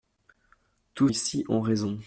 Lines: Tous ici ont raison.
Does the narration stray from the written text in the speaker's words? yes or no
no